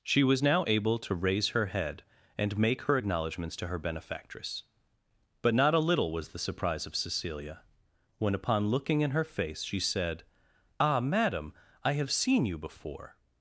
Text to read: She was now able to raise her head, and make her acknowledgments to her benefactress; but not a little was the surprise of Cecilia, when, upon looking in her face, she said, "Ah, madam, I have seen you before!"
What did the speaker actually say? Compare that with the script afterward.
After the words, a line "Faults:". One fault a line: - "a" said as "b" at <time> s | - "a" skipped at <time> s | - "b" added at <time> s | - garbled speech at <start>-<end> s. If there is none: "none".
She was now able to raise her head, and make her acknowledgments to her benefactress; but not a little was the surprise of Cecilia, when, upon looking in her face, she said, "Ah, madam, I have seen you before!"
Faults:
none